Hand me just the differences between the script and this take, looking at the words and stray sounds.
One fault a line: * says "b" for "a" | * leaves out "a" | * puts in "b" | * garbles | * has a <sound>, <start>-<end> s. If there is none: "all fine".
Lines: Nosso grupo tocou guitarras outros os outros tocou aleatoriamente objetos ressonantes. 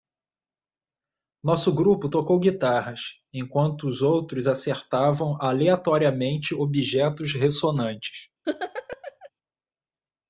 * says "enquanto" for "outros"
* says "acertavam" for "tocou"
* has a laugh, 8.4-9.3 s